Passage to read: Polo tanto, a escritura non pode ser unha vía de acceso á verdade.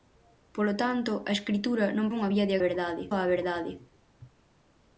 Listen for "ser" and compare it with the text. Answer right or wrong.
wrong